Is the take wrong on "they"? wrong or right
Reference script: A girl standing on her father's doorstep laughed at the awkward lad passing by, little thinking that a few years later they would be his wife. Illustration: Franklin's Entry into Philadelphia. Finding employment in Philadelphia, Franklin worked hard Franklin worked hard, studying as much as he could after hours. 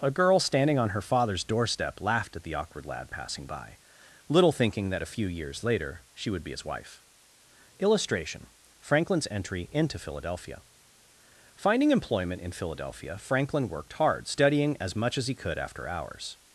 wrong